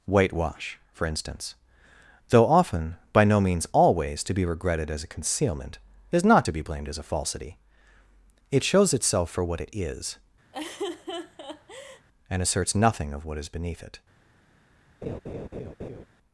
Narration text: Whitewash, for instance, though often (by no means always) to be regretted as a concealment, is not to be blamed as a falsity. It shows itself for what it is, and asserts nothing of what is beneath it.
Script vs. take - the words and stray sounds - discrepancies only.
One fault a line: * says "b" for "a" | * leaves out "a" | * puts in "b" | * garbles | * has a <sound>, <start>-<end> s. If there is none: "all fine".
* has a laugh, 10.5-12.1 s
* has a laugh, 15.0-16.1 s